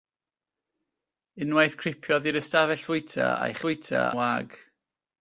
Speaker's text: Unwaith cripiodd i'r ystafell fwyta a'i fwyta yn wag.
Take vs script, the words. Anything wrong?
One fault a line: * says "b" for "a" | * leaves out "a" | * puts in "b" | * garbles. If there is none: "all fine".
all fine